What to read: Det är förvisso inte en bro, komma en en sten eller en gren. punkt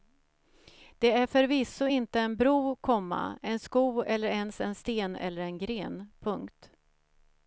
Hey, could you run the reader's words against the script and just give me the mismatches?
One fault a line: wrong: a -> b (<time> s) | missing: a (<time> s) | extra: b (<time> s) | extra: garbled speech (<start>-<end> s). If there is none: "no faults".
extra: sko eller ens (3.6 s)